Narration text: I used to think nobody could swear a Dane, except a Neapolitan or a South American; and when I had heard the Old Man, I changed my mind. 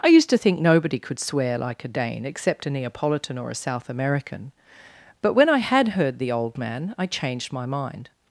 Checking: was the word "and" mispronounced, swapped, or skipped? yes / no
yes